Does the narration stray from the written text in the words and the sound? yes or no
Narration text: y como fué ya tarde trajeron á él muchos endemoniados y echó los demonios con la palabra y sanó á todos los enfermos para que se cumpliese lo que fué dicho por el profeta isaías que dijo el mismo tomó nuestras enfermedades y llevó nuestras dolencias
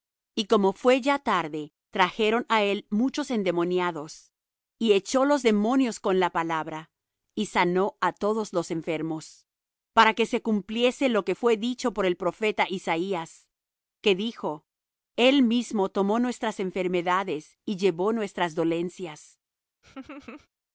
yes